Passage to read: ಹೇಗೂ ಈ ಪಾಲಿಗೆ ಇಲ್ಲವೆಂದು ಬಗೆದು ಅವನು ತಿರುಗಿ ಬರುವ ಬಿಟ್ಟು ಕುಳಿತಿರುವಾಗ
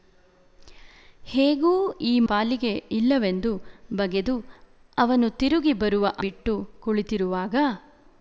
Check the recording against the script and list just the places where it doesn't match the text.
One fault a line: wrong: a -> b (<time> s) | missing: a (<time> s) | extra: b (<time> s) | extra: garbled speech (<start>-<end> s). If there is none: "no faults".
no faults